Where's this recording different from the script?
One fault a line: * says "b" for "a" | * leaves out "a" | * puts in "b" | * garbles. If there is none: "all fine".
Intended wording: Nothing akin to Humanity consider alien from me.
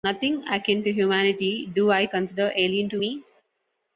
* puts in "do I"
* says "to" for "from"